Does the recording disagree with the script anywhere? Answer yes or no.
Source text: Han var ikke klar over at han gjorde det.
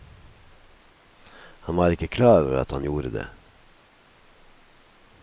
no